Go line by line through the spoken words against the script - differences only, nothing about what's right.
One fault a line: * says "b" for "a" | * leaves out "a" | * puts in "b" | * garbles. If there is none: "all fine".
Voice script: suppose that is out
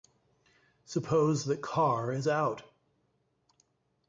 * puts in "carr"